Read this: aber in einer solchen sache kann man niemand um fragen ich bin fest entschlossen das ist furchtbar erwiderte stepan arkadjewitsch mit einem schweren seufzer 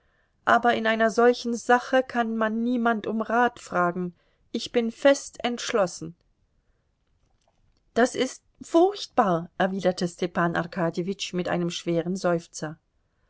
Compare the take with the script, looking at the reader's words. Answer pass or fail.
fail